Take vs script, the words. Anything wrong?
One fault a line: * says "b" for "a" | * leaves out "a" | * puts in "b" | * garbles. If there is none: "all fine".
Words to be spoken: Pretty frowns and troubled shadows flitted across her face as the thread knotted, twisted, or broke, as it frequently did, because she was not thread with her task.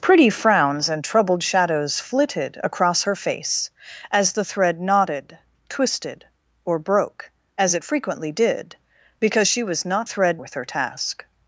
all fine